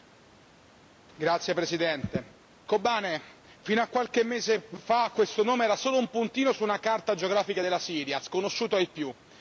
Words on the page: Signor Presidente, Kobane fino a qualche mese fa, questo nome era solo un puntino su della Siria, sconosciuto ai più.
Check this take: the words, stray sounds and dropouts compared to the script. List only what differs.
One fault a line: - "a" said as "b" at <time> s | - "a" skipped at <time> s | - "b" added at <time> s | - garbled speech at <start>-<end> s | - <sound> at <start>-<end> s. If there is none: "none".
- "una carta geografica" added at 6.6 s